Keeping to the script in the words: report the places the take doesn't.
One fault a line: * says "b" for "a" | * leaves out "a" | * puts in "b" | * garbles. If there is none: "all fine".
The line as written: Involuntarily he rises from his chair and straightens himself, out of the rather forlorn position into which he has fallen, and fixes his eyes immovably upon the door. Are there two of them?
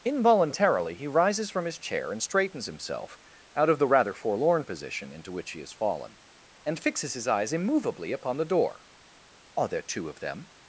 all fine